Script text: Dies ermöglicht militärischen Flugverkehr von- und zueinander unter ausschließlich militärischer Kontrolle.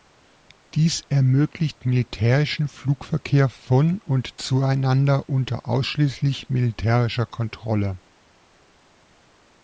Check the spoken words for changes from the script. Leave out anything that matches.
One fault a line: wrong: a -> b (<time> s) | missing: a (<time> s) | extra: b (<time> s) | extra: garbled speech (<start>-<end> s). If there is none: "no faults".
no faults